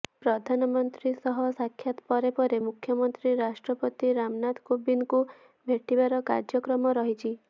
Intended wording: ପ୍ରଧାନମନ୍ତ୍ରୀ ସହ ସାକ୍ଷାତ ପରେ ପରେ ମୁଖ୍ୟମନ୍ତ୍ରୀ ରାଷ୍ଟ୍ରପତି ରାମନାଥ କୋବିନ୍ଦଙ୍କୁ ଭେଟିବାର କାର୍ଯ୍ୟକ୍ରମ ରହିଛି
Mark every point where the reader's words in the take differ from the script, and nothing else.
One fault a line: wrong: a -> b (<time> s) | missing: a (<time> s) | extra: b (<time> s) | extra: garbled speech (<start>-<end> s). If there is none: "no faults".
no faults